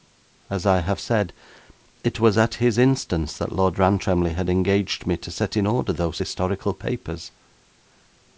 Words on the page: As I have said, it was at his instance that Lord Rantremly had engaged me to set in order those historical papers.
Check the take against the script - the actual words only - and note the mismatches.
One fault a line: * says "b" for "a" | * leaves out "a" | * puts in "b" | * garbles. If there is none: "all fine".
all fine